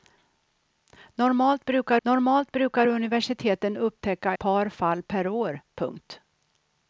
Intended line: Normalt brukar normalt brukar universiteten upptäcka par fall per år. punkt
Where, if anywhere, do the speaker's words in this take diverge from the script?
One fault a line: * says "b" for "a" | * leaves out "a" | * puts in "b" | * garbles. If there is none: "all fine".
all fine